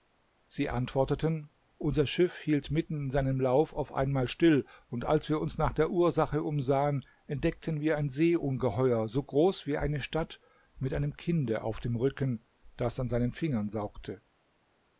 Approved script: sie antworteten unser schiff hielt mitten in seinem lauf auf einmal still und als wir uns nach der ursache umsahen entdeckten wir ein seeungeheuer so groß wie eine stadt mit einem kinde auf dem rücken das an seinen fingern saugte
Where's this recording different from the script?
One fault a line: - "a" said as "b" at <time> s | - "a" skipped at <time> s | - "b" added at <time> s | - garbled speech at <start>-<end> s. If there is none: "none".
none